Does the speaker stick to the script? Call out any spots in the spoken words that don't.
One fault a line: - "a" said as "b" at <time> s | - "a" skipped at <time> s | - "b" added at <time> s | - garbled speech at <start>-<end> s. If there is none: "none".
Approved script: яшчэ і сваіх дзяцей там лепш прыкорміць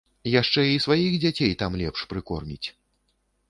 none